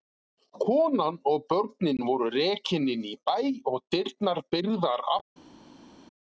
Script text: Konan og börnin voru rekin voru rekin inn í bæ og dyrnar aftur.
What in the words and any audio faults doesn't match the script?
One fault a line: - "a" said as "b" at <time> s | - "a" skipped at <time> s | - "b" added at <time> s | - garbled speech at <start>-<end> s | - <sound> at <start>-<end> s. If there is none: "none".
- "voru rekin" skipped at 2.9 s
- "byrgðar" added at 4.5 s